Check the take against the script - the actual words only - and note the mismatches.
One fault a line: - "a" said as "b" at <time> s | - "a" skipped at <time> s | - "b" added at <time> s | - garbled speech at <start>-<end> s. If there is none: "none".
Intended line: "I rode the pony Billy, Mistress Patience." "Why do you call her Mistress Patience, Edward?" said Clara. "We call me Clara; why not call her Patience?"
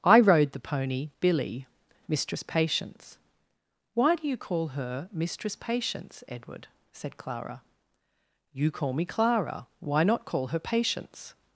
- "We" said as "You" at 8.5 s